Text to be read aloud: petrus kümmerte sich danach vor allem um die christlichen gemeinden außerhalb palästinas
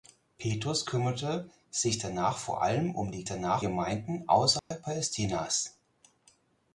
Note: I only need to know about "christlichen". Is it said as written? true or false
false